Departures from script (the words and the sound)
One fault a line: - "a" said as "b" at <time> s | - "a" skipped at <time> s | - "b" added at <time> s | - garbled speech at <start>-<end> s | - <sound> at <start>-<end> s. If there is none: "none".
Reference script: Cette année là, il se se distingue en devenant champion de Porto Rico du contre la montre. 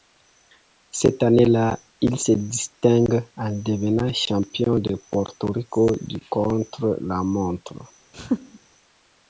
- "se" skipped at 2.3 s
- laugh at 8.1-8.6 s